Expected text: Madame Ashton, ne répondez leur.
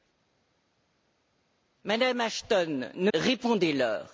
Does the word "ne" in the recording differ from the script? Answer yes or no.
no